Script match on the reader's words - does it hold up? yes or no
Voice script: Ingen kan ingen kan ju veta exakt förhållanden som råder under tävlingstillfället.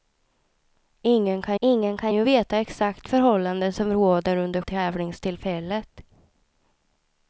yes